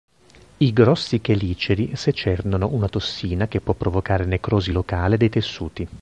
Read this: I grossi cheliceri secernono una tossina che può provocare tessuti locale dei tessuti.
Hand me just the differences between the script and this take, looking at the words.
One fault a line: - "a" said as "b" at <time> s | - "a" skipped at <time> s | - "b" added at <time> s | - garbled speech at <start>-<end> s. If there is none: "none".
- "tessuti" said as "necrosi" at 4.3 s